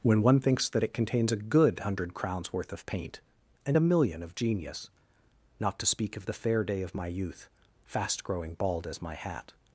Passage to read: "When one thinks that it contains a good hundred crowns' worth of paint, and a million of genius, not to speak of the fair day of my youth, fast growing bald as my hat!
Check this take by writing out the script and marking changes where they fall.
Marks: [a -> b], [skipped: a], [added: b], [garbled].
"When one thinks that it contains a good hundred crowns' worth of paint, and a million of genius, not to speak of the fair day of my youth, fast growing bald as my hat!